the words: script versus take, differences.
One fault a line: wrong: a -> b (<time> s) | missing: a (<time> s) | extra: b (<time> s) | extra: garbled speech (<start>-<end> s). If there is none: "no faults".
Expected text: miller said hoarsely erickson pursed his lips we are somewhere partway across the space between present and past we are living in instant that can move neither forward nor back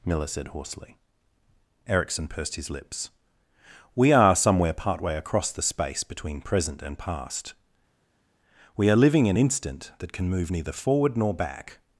no faults